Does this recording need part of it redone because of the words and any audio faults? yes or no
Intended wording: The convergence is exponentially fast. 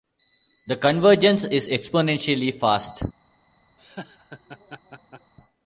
yes